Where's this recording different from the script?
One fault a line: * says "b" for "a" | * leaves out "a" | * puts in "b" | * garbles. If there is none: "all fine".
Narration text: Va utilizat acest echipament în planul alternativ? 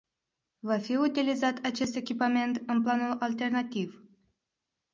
* puts in "fi"